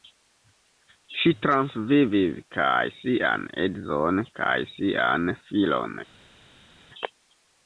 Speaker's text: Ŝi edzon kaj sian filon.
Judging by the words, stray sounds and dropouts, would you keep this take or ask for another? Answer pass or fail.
fail